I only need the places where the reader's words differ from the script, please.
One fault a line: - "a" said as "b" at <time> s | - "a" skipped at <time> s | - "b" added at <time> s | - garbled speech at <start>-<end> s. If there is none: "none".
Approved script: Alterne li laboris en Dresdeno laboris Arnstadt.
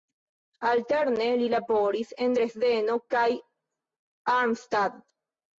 - "laboris" said as "kaj" at 3.2 s